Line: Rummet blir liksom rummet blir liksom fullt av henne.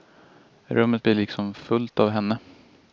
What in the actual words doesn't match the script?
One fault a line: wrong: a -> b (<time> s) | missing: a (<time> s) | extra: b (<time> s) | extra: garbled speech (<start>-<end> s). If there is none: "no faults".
missing: rummet blir liksom (1.5 s)